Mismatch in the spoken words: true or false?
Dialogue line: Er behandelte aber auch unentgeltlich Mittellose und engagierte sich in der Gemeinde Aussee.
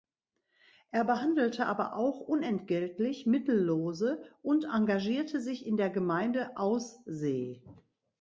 false